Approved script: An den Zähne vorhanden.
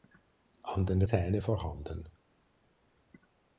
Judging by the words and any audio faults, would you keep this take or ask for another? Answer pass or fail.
pass